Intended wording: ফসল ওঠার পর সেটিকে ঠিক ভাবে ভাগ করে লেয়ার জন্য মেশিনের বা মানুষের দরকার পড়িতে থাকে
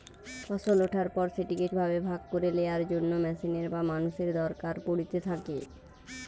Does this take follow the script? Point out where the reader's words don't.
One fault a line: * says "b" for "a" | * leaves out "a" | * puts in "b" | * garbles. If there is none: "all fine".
* leaves out "ঠিক"